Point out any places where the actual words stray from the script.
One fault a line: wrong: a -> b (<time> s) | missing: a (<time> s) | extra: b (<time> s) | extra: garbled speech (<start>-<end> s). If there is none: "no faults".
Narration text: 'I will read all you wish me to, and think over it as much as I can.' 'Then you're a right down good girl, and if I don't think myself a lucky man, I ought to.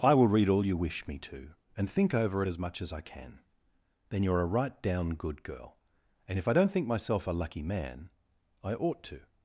no faults